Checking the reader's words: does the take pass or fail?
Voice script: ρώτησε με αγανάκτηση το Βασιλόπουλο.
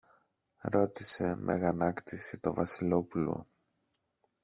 pass